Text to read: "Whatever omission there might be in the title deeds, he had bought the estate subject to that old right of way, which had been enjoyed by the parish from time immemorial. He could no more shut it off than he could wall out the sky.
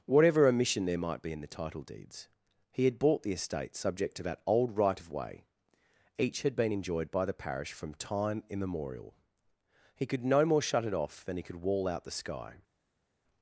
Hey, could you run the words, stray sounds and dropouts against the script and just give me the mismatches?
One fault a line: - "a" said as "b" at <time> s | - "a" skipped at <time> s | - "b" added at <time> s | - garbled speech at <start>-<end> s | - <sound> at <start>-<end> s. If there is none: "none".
- "which" said as "each" at 6.2 s